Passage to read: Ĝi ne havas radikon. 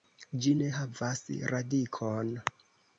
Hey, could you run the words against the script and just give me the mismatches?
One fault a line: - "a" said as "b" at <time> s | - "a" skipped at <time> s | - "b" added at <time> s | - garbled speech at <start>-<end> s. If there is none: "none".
none